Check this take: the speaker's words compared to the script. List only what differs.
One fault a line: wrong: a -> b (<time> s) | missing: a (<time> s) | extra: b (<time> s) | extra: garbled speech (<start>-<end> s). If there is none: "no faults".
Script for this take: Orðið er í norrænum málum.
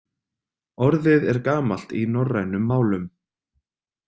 extra: gamalt (1.5 s)